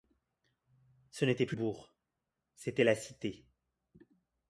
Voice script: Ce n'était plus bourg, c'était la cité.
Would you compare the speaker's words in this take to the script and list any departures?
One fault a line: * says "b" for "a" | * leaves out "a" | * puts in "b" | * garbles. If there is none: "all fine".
all fine